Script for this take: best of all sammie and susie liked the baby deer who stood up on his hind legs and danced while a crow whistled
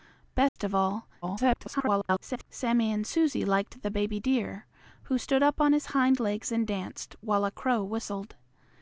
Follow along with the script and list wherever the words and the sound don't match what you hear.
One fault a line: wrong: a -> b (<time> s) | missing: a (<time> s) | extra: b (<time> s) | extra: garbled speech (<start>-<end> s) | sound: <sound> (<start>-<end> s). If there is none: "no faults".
sound: dropout (0.5-0.6 s)
extra: garbled speech (1.2-2.5 s)